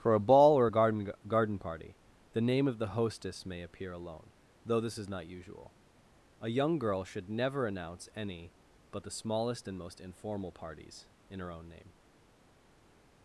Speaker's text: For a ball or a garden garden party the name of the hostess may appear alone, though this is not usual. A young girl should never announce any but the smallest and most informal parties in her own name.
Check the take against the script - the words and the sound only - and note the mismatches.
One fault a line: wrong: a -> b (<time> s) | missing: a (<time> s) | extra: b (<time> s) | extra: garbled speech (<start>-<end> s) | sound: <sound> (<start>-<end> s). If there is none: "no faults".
no faults